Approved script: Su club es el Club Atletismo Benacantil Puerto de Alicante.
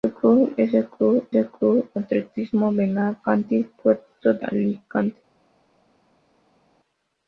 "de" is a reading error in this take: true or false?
true